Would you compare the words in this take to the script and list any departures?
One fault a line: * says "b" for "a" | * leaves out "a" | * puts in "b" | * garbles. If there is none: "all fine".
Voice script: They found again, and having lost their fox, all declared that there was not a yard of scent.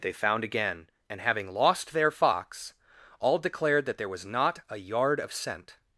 all fine